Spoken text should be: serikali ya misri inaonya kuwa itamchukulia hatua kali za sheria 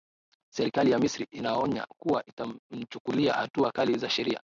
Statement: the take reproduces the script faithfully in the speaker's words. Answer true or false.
true